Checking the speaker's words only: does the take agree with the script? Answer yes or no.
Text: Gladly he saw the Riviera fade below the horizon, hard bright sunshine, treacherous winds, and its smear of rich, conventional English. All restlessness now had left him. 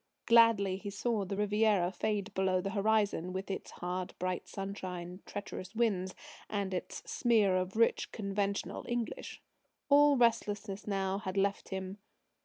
no